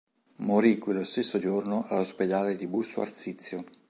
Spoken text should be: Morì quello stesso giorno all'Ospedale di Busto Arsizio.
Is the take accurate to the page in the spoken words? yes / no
yes